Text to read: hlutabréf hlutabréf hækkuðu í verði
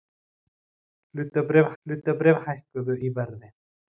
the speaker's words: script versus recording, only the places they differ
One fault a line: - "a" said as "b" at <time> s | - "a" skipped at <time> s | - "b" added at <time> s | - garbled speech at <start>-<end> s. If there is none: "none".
none